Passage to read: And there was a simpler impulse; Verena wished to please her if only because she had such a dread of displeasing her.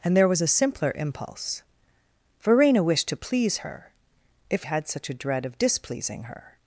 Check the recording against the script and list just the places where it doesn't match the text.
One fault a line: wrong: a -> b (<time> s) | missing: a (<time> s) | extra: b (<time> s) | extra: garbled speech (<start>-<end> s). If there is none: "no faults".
missing: only because she (4.7 s)